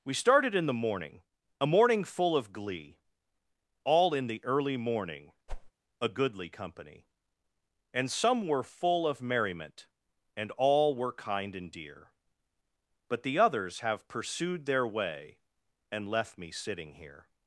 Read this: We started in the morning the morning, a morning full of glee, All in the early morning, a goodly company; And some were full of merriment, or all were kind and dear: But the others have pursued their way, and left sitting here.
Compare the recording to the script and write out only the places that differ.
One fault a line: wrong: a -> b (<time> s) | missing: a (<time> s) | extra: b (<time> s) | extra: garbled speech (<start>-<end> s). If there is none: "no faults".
missing: the morning (1.2 s)
wrong: or -> and (10.4 s)
extra: me (16.4 s)